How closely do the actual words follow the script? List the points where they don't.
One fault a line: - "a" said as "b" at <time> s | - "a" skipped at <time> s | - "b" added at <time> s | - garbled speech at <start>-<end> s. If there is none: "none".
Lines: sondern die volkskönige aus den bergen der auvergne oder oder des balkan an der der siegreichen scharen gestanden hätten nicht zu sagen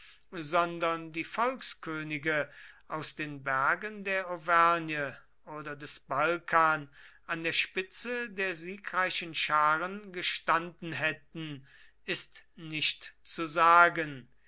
- "oder" skipped at 5.8 s
- "spitze" added at 7.5 s
- "ist" added at 12.0 s